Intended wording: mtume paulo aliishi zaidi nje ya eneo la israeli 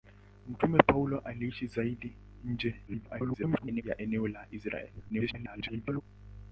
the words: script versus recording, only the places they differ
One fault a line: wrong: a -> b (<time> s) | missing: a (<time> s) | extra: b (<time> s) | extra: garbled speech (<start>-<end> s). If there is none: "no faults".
extra: garbled speech (2.9-3.8 s)
extra: garbled speech (5.1-6.0 s)